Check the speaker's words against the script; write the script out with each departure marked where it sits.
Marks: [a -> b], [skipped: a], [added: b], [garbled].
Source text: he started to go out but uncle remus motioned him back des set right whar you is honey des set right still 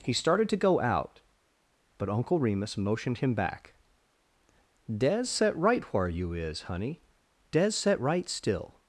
he started to go out but uncle remus motioned him back des set right whar you is honey des set right still